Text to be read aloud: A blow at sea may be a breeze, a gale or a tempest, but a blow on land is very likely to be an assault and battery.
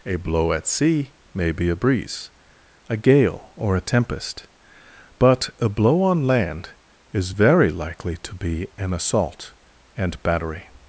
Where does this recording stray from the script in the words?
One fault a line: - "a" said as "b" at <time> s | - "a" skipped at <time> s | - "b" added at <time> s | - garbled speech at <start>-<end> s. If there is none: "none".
none